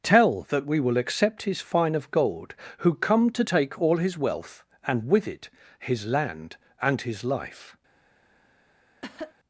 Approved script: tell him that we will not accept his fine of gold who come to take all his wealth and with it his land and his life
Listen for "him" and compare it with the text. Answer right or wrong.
wrong